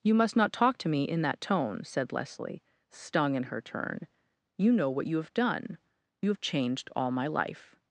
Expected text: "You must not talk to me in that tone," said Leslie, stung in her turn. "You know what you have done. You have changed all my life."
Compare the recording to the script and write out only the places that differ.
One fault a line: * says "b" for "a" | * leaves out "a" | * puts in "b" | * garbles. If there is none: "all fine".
all fine